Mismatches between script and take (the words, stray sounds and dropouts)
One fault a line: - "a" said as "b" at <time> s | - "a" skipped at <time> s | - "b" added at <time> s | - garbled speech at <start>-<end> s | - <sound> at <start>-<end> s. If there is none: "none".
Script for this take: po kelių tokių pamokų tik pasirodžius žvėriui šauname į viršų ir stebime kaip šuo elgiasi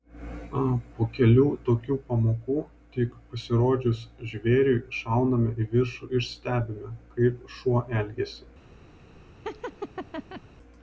- laugh at 9.4-10.4 s